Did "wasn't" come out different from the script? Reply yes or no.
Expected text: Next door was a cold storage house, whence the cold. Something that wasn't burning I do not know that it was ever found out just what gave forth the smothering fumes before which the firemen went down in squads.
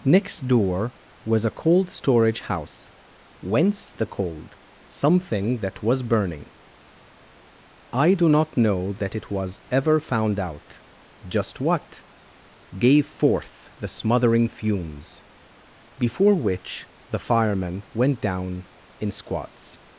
yes